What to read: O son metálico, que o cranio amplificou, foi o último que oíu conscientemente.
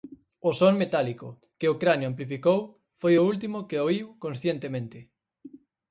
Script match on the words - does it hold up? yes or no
yes